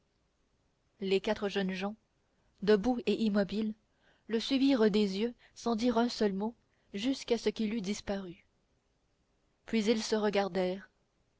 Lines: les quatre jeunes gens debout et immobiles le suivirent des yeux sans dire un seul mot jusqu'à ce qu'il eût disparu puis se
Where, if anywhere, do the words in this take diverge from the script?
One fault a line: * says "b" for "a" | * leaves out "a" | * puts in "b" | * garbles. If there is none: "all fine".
* puts in "ils"